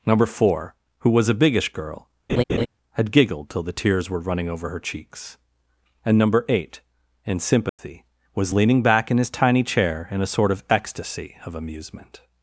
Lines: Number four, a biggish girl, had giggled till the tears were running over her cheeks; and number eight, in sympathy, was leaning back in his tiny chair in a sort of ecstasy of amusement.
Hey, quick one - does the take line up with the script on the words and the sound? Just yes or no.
no